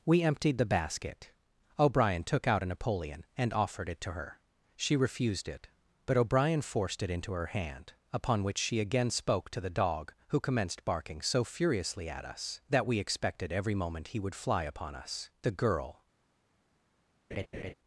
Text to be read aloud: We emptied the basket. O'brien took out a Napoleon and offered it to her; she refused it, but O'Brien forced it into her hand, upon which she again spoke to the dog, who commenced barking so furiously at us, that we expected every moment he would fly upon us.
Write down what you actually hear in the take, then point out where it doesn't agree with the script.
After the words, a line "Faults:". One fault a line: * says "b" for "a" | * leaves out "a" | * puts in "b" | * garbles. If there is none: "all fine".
We emptied the basket. O'brien took out a Napoleon and offered it to her; she refused it, but O'Brien forced it into her hand, upon which she again spoke to the dog, who commenced barking so furiously at us, that we expected every moment he would fly upon us. The girl
Faults:
* puts in "The girl"